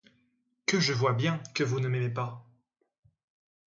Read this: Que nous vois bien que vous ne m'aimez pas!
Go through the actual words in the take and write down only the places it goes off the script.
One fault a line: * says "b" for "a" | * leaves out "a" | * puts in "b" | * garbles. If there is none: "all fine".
* says "je" for "nous"